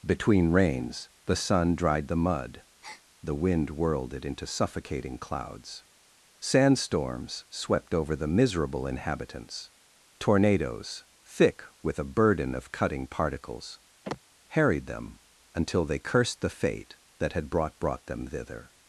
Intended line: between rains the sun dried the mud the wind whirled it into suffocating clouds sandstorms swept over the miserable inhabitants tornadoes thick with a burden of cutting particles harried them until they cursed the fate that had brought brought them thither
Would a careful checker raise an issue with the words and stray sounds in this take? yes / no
yes